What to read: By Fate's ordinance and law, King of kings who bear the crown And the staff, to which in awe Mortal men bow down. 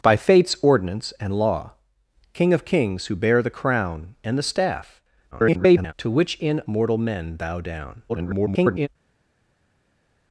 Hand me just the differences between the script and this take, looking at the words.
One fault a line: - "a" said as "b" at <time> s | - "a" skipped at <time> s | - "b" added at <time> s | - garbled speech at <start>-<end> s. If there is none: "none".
- garbled speech at 5.3-5.9 s
- "awe" skipped at 6.6 s
- garbled speech at 8.1-8.9 s